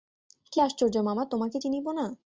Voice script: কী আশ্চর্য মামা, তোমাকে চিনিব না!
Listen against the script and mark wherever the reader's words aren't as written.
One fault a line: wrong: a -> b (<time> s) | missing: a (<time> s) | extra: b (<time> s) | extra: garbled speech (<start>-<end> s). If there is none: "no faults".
no faults